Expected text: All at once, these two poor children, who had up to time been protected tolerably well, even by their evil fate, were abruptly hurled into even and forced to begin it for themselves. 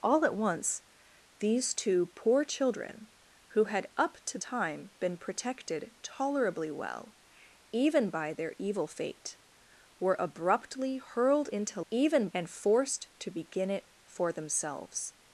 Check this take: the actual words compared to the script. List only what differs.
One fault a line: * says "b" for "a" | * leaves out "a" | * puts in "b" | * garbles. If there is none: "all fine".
all fine